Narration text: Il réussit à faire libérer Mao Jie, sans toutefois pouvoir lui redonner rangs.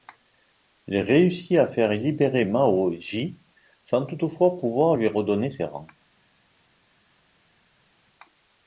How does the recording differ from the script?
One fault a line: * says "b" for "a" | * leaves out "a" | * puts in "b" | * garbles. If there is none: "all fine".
* puts in "ses"